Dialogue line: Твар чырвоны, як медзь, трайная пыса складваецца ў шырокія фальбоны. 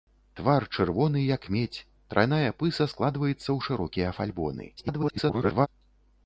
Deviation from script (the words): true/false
true